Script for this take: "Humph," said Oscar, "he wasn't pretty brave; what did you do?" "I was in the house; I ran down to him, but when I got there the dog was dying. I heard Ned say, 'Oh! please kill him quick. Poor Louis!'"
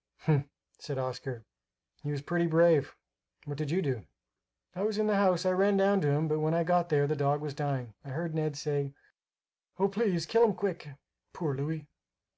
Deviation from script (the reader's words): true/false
true